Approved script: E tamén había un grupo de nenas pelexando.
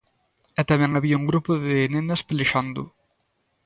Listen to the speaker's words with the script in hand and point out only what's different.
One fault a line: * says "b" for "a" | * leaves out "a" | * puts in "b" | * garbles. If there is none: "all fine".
all fine